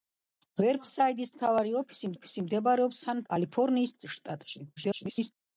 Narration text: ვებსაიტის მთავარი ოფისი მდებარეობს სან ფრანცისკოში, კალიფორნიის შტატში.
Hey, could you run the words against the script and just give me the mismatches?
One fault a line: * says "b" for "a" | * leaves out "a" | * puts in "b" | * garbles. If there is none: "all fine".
* puts in "ოფისი"
* leaves out "ფრანცისკოში"
* garbles